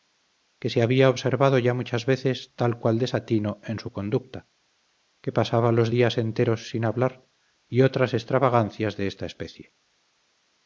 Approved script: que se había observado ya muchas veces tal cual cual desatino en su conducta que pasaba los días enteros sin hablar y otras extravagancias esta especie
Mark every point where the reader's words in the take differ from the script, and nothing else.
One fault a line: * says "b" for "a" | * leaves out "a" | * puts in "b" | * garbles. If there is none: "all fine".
* leaves out "cual"
* puts in "de"